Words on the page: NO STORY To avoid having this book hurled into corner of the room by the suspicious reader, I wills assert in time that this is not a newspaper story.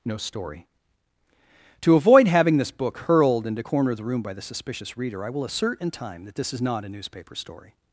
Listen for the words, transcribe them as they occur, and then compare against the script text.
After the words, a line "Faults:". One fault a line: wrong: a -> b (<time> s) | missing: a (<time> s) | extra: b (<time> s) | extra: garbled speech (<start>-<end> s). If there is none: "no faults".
NO STORY To avoid having this book hurled into corner of the room by the suspicious reader, I will assert in time that this is not a newspaper story.
Faults:
wrong: wills -> will (5.3 s)